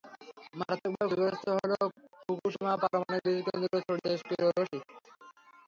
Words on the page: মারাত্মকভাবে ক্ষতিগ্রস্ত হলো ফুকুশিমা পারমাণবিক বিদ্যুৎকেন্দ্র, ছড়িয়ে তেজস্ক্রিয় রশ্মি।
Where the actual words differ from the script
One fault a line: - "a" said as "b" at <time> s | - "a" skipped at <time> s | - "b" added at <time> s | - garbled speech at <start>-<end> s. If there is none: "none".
none